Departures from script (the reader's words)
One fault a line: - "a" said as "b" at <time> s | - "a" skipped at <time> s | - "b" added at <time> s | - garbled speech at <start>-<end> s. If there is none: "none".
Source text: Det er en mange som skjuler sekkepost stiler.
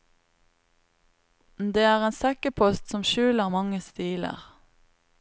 - "mange" said as "sekkepost" at 2.2 s
- "sekkepost" said as "mange" at 3.5 s